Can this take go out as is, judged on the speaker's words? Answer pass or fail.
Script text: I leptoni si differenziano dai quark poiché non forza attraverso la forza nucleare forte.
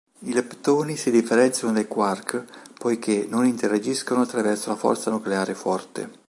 fail